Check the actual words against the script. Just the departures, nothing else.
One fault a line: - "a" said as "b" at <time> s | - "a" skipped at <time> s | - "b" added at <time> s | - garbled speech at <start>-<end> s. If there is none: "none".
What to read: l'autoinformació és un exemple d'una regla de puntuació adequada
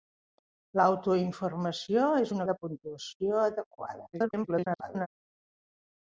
- "exemple d'una regla" skipped at 2.4 s
- garbled speech at 4.1-5.1 s